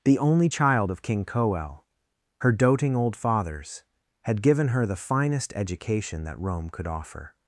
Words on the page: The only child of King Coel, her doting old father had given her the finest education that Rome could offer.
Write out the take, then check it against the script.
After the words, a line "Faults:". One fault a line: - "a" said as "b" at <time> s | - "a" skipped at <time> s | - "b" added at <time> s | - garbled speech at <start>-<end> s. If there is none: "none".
The only child of King Coel, her doting old fathers had given her the finest education that Rome could offer.
Faults:
- "father" said as "fathers" at 3.2 s